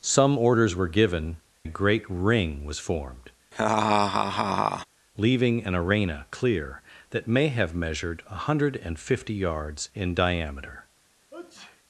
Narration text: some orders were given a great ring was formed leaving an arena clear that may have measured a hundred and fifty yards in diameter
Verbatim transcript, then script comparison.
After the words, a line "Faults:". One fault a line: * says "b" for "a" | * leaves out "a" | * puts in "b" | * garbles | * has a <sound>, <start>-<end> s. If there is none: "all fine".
some orders were given a great ring was formed leaving an arena clear that may have measured a hundred and fifty yards in diameter
Faults:
* has a laugh, 3.5-4.8 s
* has a sneeze, 11.3-11.8 s